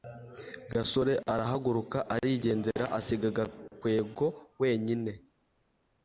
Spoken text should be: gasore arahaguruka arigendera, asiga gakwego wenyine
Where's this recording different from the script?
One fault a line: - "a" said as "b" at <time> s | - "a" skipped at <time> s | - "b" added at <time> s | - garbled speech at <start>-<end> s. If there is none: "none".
none